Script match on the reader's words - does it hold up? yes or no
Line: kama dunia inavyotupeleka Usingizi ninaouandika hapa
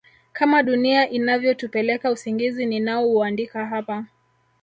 yes